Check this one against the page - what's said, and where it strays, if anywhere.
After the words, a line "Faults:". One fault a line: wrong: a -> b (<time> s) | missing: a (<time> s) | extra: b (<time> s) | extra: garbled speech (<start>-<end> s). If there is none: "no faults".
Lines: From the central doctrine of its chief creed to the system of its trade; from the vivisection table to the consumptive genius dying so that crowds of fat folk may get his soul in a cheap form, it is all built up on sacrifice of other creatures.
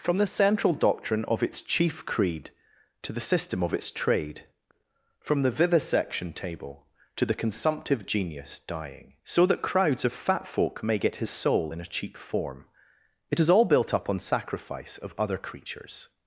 From the central doctrine of its chief creed to the system of its trade; from the vivisection table to the consumptive genius dying so that crowds of fat folk may get his soul in a cheap form, it is all built up on sacrifice of other creatures.
Faults:
no faults